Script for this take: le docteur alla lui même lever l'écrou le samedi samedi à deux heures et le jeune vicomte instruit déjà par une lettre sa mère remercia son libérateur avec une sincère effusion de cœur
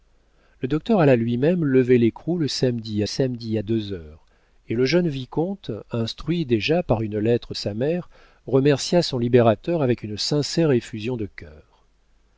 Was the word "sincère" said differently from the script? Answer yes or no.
no